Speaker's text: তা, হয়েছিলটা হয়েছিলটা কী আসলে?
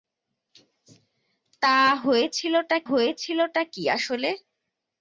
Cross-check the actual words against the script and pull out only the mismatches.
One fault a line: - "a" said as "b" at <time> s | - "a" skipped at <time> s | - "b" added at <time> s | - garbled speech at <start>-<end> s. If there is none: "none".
none